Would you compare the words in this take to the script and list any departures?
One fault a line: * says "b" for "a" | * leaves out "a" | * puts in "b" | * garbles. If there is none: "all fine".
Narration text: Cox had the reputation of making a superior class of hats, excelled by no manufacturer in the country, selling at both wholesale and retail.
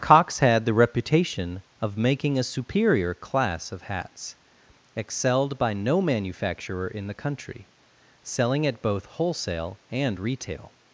all fine